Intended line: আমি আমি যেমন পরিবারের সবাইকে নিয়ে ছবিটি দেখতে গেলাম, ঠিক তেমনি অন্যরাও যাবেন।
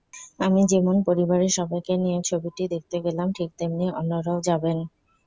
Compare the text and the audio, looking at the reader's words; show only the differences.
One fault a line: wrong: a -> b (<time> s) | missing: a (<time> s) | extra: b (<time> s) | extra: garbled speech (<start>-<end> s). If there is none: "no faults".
missing: আমি (0.6 s)